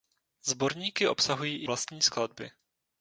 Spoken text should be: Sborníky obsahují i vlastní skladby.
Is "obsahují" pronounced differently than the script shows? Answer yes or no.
no